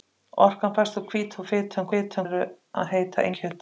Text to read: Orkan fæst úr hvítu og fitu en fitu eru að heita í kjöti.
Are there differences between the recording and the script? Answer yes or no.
no